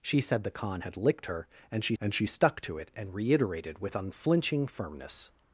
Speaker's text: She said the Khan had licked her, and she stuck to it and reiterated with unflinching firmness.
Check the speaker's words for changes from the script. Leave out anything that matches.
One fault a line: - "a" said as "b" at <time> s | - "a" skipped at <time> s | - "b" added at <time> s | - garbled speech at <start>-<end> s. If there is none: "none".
- "and she" added at 2.0 s